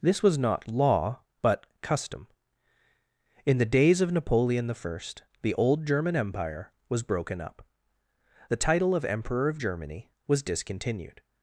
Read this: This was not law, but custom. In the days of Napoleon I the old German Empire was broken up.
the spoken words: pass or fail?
fail